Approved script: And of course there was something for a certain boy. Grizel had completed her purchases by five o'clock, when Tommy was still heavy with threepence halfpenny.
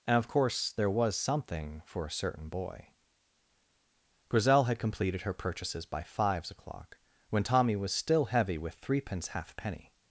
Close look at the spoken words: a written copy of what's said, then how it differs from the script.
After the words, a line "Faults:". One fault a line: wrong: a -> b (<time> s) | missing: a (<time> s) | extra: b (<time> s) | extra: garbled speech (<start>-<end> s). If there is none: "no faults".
And of course there was something for a certain boy. Grizel had completed her purchases by fives o'clock, when Tommy was still heavy with threepence halfpenny.
Faults:
wrong: five -> fives (6.0 s)